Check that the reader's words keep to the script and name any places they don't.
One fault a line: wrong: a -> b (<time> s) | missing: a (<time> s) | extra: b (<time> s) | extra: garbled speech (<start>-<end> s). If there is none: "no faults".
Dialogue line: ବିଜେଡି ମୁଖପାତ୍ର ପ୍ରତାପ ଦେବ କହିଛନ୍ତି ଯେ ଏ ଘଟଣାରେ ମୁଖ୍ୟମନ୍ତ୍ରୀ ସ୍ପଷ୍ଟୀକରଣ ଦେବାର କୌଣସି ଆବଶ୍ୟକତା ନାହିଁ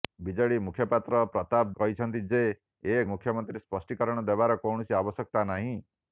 missing: ଦେବ (1.7 s)
missing: ଘଟଣାରେ (3.0 s)